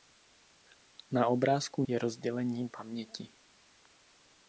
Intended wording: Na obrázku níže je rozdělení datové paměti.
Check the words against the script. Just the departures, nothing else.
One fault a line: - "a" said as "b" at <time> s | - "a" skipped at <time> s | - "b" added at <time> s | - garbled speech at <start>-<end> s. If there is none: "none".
- "níže" skipped at 1.8 s
- "datové" skipped at 2.7 s